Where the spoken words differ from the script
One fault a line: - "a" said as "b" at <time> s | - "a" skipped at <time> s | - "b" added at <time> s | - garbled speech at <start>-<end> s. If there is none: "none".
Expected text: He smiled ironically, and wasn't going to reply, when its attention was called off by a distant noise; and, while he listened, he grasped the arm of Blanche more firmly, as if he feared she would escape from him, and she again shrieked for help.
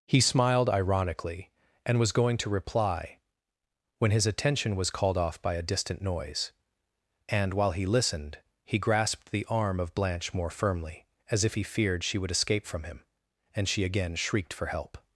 - "wasn't" said as "was" at 2.0 s
- "its" said as "his" at 4.1 s